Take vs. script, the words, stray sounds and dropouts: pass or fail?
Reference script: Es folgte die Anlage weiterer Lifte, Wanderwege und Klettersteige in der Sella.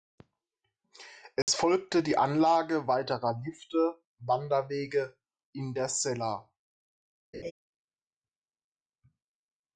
fail